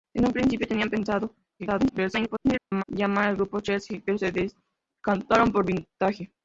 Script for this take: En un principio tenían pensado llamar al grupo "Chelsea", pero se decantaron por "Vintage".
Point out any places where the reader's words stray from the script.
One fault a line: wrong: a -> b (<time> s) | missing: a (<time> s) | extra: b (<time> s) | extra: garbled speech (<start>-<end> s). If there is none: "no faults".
extra: garbled speech (1.6-2.8 s)